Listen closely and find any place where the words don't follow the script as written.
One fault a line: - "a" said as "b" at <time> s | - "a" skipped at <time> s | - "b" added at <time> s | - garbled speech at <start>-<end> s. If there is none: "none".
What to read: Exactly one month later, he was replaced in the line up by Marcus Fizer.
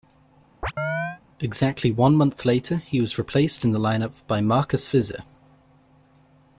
none